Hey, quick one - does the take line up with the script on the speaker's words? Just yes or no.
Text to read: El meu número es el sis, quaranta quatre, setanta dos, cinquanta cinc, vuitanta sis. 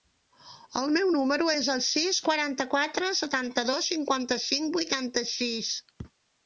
yes